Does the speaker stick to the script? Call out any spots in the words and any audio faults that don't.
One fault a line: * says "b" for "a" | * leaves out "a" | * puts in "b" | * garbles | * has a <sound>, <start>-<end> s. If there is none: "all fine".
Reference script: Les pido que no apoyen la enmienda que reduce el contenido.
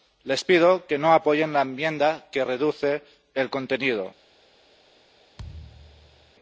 * has a thud, 5.4-6.3 s